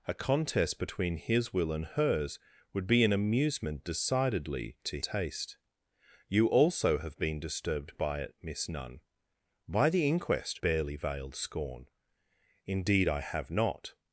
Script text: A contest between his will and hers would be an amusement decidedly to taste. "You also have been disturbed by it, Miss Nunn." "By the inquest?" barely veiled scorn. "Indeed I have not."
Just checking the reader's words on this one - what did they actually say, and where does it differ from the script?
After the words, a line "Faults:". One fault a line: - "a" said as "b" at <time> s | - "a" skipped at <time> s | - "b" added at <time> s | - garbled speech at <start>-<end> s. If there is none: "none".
A contest between his will and hers would be an amusement decidedly to taste. "You also have been disturbed by it, Miss Nunn." "By the inquest?" barely veiled scorn. "Indeed I have not."
Faults:
none